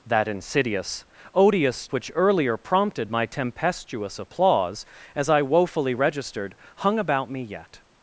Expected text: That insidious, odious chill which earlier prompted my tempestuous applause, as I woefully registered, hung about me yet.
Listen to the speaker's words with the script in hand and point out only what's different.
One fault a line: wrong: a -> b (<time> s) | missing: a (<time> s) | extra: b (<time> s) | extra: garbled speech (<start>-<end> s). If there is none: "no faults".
missing: chill (1.9 s)